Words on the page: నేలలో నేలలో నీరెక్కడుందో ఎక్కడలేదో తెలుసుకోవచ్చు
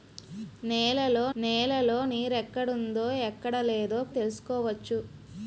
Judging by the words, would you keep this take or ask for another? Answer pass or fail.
pass